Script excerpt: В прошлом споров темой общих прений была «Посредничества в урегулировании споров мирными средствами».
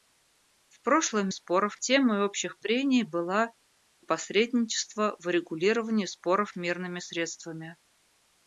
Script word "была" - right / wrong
right